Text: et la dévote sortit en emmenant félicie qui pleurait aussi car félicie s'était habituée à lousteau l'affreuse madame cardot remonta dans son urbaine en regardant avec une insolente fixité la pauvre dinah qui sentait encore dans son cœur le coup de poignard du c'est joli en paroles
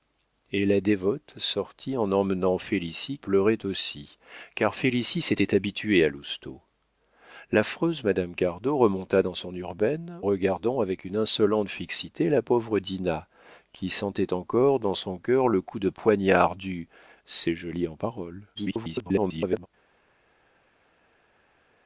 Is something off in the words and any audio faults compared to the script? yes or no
yes